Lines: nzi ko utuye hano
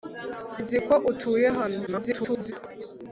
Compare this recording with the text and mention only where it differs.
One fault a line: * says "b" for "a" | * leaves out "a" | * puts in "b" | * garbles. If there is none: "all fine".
* garbles